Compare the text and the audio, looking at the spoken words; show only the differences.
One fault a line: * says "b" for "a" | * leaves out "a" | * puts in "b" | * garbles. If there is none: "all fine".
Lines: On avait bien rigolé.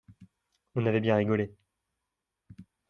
all fine